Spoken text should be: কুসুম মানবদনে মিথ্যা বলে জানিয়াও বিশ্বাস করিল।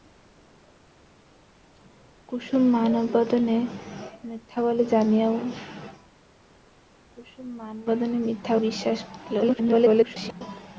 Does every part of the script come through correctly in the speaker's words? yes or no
no